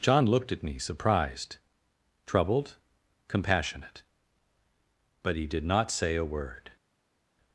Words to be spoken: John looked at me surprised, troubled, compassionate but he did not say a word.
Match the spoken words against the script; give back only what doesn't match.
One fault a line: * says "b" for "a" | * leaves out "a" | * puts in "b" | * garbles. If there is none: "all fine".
all fine